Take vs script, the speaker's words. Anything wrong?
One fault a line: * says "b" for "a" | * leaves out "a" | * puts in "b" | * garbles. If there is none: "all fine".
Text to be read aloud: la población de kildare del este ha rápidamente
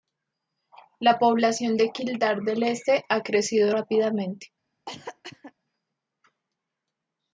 * puts in "crecido"